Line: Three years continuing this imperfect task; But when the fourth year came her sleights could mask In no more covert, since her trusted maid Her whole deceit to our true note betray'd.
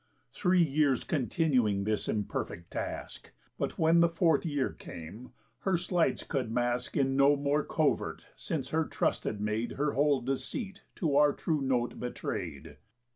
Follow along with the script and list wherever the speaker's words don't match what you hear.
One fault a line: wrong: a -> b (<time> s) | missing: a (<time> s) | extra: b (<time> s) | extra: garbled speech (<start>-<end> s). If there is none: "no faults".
no faults